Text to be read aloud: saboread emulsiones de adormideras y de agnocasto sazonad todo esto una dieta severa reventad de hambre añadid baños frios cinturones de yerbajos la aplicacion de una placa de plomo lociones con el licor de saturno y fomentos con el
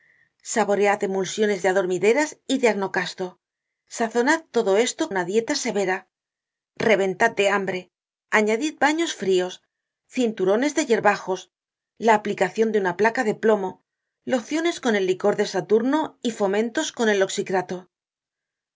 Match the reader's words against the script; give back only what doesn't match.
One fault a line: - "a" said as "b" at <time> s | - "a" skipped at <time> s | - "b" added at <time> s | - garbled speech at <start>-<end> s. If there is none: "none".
none